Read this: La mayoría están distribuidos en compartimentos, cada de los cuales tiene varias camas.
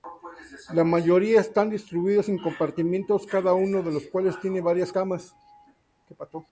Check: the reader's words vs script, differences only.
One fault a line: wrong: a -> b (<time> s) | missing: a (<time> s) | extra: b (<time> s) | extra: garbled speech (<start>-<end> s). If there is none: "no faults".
extra: uno (3.5 s)